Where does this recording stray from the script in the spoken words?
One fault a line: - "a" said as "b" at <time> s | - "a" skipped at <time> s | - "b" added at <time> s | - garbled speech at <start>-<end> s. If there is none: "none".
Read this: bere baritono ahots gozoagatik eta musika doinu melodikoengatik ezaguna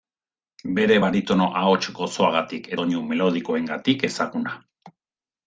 - "eta musika" skipped at 2.7 s